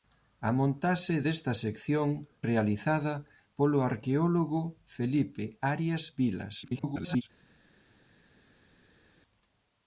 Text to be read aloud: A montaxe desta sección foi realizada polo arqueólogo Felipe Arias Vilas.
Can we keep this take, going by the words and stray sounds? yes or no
no